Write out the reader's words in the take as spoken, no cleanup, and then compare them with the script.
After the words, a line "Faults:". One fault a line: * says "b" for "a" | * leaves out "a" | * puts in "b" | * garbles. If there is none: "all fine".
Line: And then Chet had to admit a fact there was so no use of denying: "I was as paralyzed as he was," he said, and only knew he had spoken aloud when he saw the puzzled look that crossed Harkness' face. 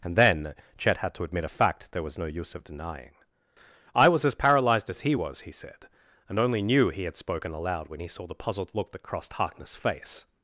And then Chet had to admit a fact there was no use of denying: "I was as paralyzed as he was," he said, and only knew he had spoken aloud when he saw the puzzled look that crossed Harkness' face.
Faults:
* leaves out "so"